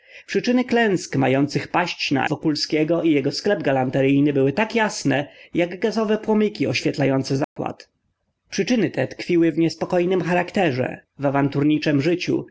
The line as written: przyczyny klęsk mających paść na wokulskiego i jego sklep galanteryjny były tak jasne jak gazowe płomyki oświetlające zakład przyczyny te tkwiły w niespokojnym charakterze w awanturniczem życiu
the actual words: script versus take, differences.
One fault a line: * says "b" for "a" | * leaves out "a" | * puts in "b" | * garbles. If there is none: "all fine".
all fine